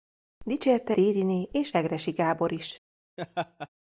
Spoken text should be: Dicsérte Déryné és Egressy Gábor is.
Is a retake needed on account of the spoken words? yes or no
no